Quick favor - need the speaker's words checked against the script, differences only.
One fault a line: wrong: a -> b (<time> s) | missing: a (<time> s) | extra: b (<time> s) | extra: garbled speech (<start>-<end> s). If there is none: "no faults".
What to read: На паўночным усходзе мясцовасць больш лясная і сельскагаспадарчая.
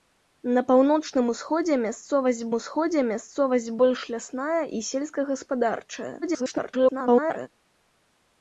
extra: усходзе мясцовасць (2.6 s)
extra: garbled speech (6.2-7.5 s)